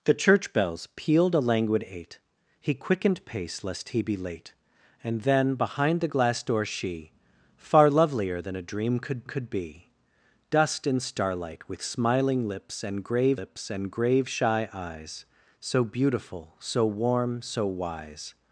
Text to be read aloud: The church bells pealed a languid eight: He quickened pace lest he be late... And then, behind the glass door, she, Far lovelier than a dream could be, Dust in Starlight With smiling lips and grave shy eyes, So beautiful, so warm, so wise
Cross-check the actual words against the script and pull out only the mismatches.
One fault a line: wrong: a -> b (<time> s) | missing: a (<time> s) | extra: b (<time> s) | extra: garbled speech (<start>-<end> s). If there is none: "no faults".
extra: could (9.3 s)
extra: lips and grave (13.3 s)